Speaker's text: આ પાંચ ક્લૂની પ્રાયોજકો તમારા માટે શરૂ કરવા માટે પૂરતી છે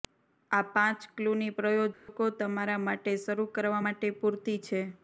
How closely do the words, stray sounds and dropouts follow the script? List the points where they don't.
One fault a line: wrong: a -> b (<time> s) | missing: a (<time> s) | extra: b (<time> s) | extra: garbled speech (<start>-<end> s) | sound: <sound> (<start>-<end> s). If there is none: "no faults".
sound: dropout (1.9-2.1 s)